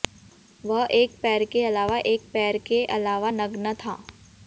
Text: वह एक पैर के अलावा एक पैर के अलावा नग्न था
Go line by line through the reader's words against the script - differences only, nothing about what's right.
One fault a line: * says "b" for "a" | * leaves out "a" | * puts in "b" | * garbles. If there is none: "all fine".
all fine